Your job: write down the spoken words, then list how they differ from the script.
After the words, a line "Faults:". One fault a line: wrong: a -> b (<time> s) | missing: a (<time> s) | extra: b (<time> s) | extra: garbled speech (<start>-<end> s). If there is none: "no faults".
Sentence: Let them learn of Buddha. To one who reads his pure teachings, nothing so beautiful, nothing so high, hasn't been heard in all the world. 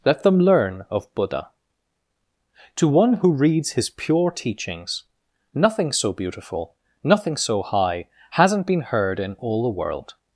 Let them learn of Buddha. To one who reads his pure teachings, nothing so beautiful, nothing so high, hasn't been heard in all the world.
Faults:
no faults